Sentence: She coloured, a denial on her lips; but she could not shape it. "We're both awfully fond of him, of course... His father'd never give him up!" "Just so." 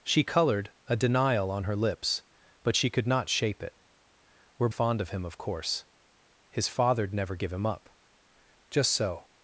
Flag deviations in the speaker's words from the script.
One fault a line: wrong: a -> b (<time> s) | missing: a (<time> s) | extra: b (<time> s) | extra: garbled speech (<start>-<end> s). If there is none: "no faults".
missing: both awfully (4.7 s)